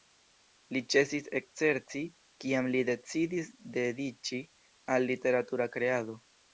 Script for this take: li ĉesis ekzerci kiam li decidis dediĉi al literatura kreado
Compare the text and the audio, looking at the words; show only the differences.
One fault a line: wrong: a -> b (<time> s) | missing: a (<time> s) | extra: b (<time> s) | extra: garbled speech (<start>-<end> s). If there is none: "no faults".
no faults